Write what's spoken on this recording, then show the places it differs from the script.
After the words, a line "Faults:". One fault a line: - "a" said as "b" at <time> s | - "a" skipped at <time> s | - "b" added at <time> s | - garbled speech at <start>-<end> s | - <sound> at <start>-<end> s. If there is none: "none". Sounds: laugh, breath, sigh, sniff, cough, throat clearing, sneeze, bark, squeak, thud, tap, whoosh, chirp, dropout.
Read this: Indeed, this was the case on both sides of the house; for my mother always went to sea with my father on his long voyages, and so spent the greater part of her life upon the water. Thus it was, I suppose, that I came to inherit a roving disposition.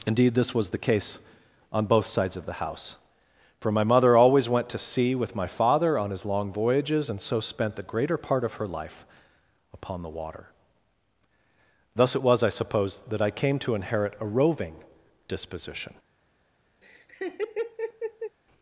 Indeed, this was the case on both sides of the house; for my mother always went to sea with my father on his long voyages, and so spent the greater part of her life upon the water. Thus it was, I suppose, that I came to inherit a roving disposition.
Faults:
- laugh at 16.8-18.4 s